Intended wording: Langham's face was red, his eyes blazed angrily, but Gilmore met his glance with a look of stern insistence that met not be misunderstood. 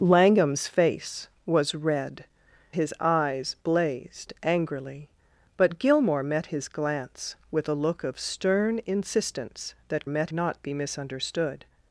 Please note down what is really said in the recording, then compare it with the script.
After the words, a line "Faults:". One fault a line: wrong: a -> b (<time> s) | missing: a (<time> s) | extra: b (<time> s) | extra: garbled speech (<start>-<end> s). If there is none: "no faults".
Langham's face was red, his eyes blazed angrily, but Gilmore met his glance with a look of stern insistence that met not be misunderstood.
Faults:
no faults